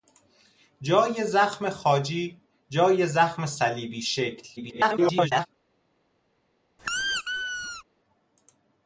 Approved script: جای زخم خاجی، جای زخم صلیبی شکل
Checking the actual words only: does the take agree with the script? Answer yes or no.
no